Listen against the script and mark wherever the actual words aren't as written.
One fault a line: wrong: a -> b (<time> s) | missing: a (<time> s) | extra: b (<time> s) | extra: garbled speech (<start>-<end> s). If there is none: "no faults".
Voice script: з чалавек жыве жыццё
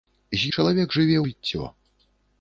no faults